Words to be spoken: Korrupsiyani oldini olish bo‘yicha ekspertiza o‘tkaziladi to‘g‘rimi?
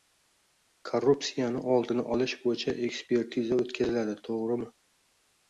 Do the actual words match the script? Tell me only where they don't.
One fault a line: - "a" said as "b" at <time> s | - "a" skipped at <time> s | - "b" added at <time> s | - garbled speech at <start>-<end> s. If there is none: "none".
none